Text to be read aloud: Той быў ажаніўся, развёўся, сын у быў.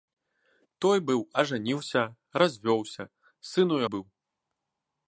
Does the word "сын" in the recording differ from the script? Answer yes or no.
no